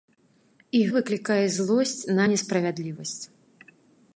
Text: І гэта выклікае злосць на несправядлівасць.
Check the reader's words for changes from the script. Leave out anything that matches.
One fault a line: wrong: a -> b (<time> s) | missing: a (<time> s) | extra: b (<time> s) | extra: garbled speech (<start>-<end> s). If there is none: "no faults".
missing: гэта (0.8 s)